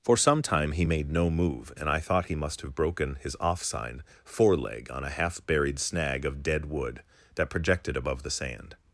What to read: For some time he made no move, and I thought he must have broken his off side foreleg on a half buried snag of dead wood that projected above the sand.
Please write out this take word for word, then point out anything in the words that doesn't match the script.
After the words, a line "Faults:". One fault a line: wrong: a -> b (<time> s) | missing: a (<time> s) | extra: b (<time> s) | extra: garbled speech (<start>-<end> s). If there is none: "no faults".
For some time he made no move, and I thought he must have broken his off sign foreleg on a half buried snag of dead wood that projected above the sand.
Faults:
wrong: side -> sign (3.6 s)